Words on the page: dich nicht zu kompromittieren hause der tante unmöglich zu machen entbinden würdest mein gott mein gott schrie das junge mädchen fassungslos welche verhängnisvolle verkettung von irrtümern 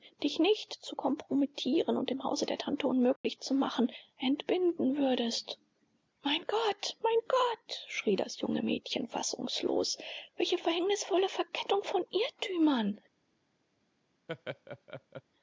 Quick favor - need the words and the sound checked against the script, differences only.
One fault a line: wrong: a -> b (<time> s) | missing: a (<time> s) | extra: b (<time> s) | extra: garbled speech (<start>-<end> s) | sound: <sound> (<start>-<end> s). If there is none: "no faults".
extra: und im (2.0 s)
sound: dropout (3.2-3.2 s)
sound: laugh (14.3-15.2 s)